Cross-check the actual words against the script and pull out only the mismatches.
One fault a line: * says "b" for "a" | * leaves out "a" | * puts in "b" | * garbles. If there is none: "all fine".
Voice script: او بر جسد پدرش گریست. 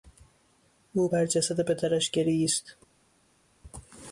all fine